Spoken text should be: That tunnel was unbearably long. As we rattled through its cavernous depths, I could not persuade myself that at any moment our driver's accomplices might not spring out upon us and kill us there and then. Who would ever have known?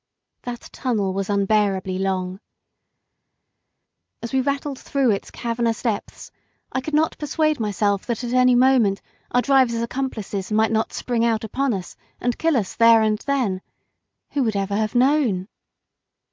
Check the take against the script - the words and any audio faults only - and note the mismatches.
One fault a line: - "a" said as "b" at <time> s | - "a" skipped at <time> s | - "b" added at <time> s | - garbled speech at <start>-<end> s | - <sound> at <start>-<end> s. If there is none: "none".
none